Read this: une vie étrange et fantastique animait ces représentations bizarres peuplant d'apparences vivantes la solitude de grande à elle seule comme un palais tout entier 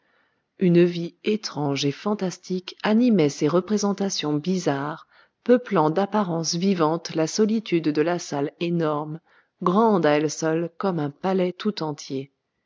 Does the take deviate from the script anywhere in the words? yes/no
yes